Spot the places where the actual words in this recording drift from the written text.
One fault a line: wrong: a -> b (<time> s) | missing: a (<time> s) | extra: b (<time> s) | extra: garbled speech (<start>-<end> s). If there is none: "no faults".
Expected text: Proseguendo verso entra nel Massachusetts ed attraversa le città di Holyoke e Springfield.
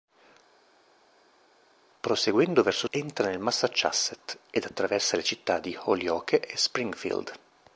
no faults